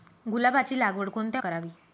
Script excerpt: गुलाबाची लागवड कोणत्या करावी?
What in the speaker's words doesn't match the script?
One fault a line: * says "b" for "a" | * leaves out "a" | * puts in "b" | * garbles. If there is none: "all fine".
all fine